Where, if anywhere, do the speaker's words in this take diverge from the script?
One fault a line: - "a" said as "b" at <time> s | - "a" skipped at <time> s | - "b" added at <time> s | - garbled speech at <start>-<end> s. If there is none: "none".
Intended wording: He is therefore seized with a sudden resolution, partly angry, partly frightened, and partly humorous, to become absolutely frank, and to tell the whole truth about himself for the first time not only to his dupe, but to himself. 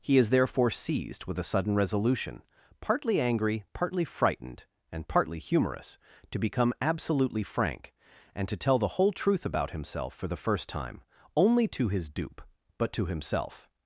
- "not" skipped at 11.0 s